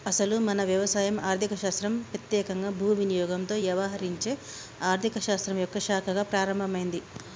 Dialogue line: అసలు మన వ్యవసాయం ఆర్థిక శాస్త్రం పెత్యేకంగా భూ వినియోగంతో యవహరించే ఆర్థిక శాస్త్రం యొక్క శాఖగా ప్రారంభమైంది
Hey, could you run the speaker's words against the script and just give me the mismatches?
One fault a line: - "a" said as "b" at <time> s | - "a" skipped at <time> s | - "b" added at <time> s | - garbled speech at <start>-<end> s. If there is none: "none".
none